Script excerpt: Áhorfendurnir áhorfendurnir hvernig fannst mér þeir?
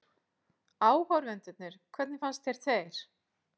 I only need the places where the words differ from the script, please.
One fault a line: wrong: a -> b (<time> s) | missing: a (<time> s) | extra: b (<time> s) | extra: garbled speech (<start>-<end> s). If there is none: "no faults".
missing: áhorfendurnir (1.8 s)
wrong: mér -> þér (2.5 s)